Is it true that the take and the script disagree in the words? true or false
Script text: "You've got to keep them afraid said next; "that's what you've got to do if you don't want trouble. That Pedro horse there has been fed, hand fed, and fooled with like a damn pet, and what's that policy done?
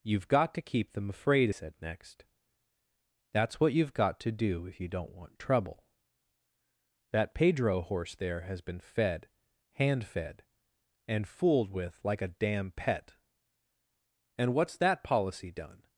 false